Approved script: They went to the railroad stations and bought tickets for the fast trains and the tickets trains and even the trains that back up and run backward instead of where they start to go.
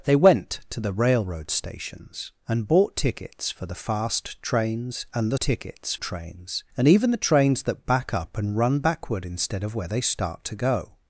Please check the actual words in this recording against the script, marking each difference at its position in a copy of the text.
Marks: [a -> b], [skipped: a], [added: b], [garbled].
They went to the railroad stations and bought tickets for the fast trains and the tickets trains and even the trains that back up and run backward instead of where they start to go.